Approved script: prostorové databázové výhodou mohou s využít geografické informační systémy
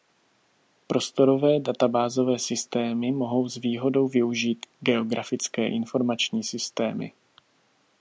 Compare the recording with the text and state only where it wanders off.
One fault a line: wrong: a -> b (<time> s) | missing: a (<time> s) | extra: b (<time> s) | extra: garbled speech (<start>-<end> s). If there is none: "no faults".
wrong: výhodou -> systémy (2.4 s)
extra: výhodou (3.6 s)